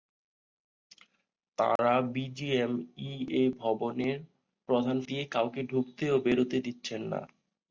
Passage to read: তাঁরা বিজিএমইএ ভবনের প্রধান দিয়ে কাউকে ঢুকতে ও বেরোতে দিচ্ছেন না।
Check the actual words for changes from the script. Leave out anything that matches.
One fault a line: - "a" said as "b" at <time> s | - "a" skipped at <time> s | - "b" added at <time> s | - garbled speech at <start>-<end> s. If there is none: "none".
none